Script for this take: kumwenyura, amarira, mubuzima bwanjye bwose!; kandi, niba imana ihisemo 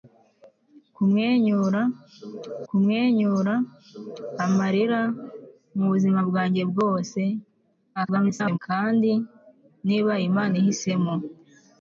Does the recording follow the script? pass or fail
fail